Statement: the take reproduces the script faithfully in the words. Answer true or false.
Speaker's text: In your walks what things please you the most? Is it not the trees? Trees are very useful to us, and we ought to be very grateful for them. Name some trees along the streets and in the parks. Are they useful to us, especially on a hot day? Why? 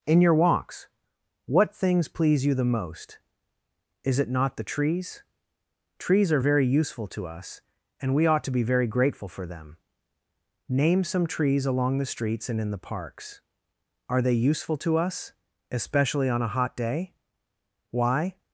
true